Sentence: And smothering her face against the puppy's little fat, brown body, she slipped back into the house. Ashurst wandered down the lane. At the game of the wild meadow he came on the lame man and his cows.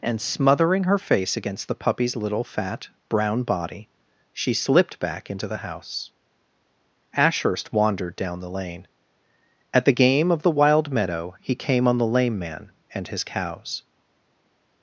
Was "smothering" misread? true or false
false